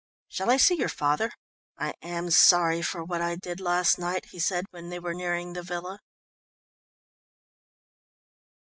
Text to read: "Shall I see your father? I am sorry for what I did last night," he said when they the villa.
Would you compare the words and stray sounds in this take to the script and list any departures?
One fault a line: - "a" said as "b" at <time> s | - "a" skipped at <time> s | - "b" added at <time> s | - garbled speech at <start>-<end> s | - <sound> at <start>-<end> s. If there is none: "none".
- "were nearing" added at 5.0 s